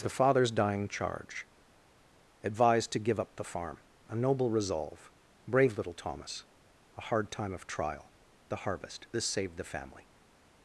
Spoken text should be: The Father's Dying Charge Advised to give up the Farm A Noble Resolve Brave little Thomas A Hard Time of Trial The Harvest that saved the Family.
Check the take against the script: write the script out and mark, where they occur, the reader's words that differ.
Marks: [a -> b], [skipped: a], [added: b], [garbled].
The Father's Dying Charge Advised to give up the Farm A Noble Resolve Brave little Thomas A Hard Time of Trial The Harvest [that -> this] saved the Family.